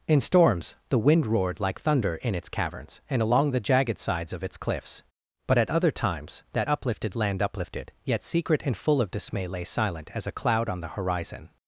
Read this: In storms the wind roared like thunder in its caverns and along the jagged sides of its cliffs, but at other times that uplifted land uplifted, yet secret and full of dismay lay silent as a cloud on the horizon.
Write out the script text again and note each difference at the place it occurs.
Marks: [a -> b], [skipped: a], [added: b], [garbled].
In storms the wind roared like thunder in its caverns and along the jagged sides of its cliffs, but at other times that uplifted land uplifted, yet secret and full of dismay lay silent as a cloud on the horizon.